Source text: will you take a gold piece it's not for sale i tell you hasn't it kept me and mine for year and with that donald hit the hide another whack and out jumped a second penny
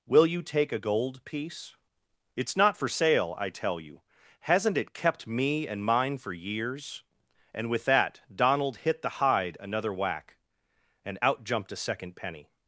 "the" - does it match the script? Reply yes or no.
yes